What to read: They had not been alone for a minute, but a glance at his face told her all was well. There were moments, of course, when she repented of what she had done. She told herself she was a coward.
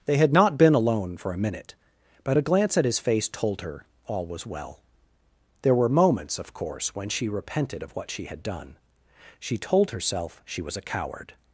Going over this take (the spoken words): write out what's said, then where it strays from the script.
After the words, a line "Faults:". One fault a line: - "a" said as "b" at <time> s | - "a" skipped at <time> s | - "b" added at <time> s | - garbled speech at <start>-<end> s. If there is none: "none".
They had not been alone for a minute, but a glance at his face told her all was well. There were moments, of course, when she repented of what she had done. She told herself she was a coward.
Faults:
none